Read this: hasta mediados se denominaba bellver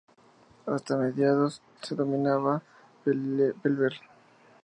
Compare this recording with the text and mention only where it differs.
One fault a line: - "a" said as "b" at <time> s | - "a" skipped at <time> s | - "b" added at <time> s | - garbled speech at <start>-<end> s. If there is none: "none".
none